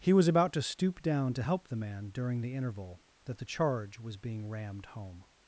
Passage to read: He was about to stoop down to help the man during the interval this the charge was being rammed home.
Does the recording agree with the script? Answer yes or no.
no